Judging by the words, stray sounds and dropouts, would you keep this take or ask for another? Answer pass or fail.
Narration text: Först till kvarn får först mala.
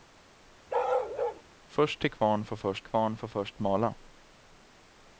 fail